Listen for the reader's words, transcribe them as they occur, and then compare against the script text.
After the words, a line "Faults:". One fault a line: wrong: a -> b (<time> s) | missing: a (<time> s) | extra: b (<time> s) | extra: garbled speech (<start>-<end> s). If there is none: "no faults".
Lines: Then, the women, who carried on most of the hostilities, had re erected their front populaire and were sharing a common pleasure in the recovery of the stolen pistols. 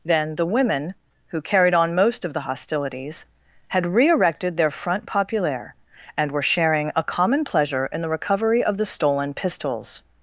Then, the women, who carried on most of the hostilities, had re erected their front populaire and were sharing a common pleasure in the recovery of the stolen pistols.
Faults:
no faults